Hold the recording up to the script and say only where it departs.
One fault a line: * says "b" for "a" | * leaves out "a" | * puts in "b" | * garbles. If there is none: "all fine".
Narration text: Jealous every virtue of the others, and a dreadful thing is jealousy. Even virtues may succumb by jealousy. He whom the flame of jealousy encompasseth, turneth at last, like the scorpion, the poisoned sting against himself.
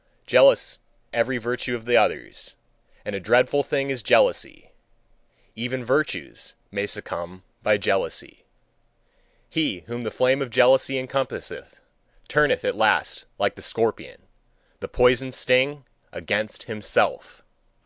all fine